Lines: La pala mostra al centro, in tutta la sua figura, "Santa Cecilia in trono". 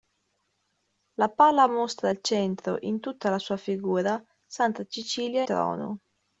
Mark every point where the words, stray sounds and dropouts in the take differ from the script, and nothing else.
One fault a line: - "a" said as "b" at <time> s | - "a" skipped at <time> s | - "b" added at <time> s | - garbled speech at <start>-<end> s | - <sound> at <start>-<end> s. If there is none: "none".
- "in" skipped at 5.4 s